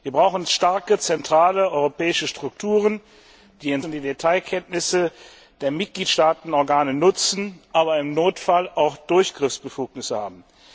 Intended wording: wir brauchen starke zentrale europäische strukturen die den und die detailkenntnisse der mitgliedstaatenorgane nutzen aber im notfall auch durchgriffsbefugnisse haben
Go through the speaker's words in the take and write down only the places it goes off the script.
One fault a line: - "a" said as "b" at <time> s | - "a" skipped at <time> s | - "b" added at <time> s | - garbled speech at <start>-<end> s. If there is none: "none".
none